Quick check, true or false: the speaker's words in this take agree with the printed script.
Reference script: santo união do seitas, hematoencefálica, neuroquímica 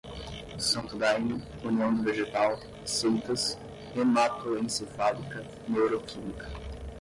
false